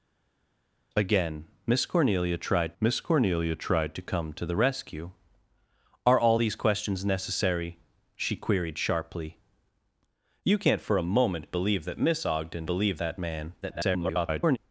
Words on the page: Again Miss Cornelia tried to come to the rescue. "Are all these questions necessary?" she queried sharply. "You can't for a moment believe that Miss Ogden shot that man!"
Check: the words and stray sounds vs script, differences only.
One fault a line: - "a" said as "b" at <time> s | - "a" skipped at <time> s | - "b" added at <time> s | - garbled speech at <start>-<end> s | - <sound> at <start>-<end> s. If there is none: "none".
- "Miss Cornelia tried" added at 2.8 s
- "shot" said as "believe" at 12.7 s
- garbled speech at 13.6-14.6 s